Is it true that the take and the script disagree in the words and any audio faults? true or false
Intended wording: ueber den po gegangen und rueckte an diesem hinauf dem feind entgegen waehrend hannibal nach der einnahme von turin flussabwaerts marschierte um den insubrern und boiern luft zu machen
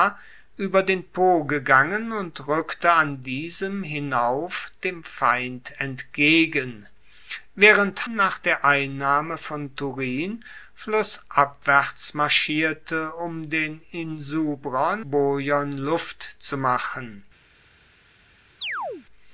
true